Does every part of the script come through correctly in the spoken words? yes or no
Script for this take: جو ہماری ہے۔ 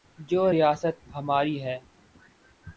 no